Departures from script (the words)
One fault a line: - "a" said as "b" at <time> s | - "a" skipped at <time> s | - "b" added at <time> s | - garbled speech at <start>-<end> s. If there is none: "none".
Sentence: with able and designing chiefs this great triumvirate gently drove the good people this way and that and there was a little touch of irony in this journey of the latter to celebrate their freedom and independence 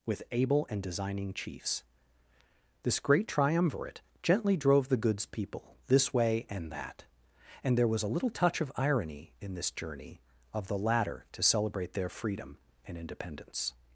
- "good" said as "goods" at 5.0 s